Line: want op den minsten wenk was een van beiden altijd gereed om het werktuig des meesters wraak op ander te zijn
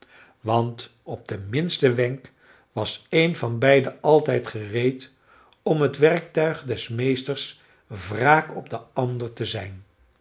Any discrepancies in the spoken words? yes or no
yes